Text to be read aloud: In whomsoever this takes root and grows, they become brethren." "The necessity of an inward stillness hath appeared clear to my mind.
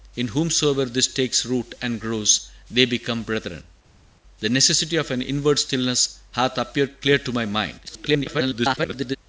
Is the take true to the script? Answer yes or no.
no